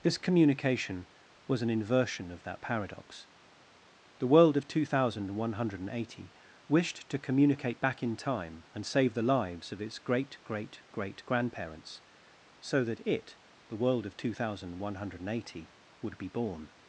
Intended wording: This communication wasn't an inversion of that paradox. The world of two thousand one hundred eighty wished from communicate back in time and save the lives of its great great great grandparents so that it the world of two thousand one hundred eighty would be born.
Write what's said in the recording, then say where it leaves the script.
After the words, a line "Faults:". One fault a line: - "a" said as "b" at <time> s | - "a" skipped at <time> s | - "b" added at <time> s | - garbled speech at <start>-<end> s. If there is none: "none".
This communication was an inversion of that paradox. The world of two thousand one hundred eighty wished to communicate back in time and save the lives of its great great great grandparents so that it the world of two thousand one hundred eighty would be born.
Faults:
- "wasn't" said as "was" at 1.4 s
- "from" said as "to" at 7.1 s